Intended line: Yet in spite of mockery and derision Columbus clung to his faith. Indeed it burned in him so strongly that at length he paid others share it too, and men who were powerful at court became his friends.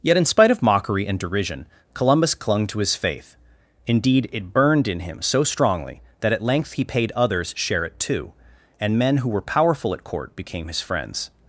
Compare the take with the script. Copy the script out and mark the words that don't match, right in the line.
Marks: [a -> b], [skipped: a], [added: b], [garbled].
Yet in spite of mockery and derision Columbus clung to his faith. Indeed it burned in him so strongly that at length he paid others share it too, and men who were powerful at court became his friends.